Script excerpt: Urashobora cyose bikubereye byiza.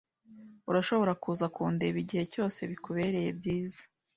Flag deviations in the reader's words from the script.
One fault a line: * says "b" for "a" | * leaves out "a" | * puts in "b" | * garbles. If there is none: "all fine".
* puts in "kuza kundeba igihe"